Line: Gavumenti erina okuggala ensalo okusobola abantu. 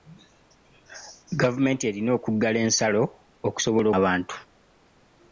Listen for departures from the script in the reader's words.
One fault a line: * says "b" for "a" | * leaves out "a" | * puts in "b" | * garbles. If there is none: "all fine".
all fine